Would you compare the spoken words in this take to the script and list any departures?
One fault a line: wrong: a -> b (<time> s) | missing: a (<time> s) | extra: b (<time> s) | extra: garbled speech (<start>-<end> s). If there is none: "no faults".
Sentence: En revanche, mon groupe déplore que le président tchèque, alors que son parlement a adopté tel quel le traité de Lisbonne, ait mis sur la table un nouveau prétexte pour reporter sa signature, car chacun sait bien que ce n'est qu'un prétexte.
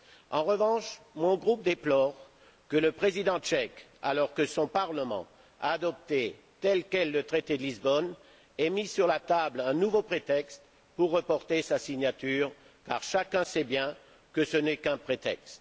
no faults